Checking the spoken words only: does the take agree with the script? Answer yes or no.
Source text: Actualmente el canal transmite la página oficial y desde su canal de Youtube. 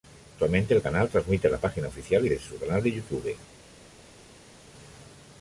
yes